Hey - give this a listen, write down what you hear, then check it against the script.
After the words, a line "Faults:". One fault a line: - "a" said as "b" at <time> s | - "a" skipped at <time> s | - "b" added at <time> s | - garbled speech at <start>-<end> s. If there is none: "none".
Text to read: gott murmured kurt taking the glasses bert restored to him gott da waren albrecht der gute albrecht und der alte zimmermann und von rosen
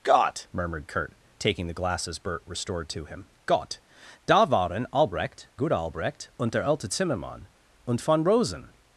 gott murmured kurt taking the glasses bert restored to him gott da waren albrecht gute albrecht und der alte zimmermann und von rosen
Faults:
- "der" skipped at 5.5 s